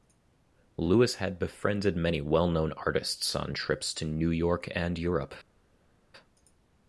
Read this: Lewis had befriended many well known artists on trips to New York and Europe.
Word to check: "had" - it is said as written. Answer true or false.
true